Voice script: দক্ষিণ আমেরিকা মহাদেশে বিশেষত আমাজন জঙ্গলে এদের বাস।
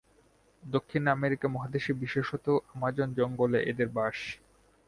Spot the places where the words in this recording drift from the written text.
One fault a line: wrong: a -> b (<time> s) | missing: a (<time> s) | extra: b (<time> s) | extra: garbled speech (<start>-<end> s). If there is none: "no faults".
no faults